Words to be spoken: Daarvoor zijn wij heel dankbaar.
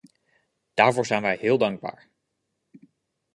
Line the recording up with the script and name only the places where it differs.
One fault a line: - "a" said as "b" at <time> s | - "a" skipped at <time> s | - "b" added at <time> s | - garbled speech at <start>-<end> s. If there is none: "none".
none